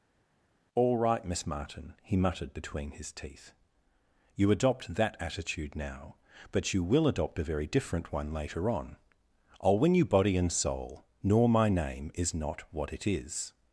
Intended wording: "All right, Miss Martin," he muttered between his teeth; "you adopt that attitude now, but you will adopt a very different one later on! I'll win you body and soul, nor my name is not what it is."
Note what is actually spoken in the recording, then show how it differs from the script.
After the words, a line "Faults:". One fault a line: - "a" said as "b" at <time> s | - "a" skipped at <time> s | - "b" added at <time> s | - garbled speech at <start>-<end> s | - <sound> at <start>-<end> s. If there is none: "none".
"All right, Miss Martin," he muttered between his teeth; "you adopt that attitude now, but you will adopt a very different one later on! I'll win you body and soul, nor my name is not what it is."
Faults:
none